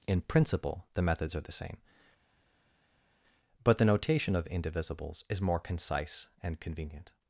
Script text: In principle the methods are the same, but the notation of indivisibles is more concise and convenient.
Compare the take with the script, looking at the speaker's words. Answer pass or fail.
pass